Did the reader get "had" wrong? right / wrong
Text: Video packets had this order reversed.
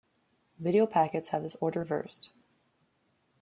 wrong